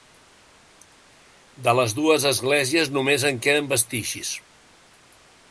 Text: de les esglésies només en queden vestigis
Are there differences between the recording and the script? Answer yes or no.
yes